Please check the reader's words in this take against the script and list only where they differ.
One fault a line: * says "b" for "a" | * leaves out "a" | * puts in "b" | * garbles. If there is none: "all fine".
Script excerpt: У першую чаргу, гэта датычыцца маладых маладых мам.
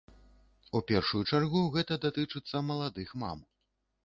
* leaves out "маладых"